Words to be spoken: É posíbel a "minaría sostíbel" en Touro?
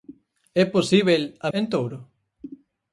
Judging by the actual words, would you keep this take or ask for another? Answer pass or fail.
fail